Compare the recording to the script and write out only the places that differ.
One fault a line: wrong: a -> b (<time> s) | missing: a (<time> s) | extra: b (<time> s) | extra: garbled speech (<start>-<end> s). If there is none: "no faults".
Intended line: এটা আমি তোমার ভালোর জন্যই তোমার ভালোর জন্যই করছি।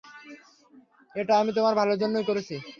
missing: তোমার ভালোর জন্যই (2.3 s)